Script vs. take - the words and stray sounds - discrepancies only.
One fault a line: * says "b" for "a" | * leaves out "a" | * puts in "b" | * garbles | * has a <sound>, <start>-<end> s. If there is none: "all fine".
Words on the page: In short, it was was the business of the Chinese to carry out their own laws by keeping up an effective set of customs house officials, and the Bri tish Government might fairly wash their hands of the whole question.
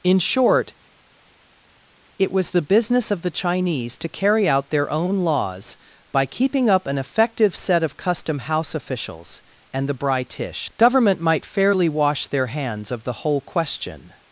* leaves out "was"
* says "custom" for "customs"